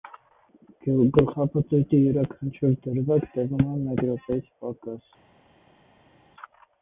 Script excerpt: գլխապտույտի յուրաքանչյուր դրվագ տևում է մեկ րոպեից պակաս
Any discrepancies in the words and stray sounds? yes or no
no